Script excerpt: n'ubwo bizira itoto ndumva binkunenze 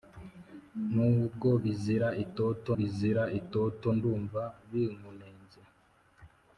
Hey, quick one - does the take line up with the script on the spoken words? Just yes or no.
no